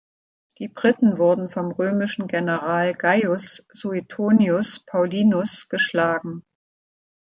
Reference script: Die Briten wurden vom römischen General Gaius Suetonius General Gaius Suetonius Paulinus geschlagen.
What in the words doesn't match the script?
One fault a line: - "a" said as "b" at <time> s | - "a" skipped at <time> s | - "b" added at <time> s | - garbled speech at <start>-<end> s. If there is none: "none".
- "General Gaius Suetonius" skipped at 4.8 s